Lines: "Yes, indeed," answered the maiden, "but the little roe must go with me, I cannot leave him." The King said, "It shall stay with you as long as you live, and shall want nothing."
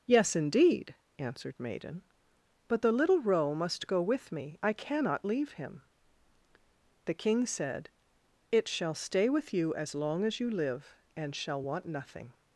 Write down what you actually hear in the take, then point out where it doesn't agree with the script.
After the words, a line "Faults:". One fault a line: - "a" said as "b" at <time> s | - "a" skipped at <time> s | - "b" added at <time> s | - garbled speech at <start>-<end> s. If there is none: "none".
"Yes, indeed," answered maiden, "but the little roe must go with me, I cannot leave him." The King said, "It shall stay with you as long as you live, and shall want nothing."
Faults:
- "the" skipped at 1.6 s